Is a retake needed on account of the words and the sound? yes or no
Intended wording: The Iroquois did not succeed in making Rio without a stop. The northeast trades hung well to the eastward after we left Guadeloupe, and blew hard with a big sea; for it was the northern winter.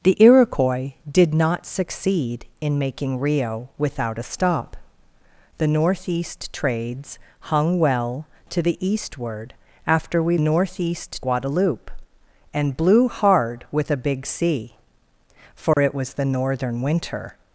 yes